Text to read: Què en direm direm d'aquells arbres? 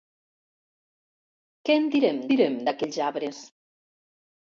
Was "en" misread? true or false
false